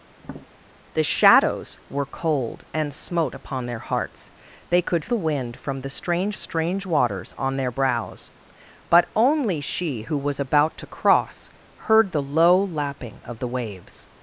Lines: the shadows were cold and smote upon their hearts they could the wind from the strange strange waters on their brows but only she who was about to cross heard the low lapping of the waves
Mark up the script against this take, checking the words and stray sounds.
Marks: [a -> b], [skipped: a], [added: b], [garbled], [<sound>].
[tap] the shadows were cold and smote upon their hearts they could the wind from the strange strange waters on their brows but only she who was about to cross heard the low lapping of the waves